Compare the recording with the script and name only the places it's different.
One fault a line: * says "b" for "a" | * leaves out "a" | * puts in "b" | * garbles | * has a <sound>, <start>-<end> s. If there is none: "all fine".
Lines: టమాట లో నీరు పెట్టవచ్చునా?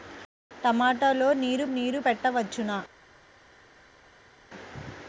* puts in "నీరు"